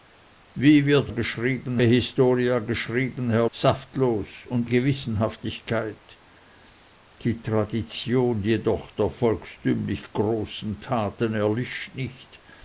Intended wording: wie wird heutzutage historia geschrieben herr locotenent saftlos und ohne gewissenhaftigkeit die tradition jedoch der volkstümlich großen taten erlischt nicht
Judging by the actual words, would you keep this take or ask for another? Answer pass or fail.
fail